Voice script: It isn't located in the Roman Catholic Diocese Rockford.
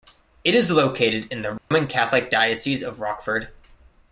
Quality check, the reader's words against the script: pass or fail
fail